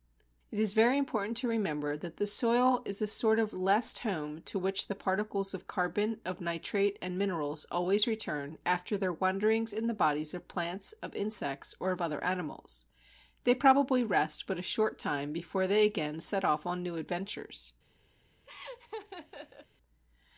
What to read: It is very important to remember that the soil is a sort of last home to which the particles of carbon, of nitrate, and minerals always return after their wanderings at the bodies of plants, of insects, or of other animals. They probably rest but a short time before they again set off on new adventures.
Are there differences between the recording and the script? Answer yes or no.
yes